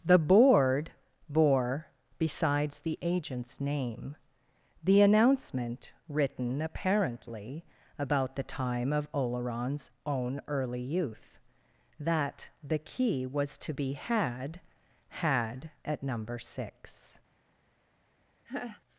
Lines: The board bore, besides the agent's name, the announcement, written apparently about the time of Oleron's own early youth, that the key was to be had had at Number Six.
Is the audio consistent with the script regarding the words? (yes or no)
yes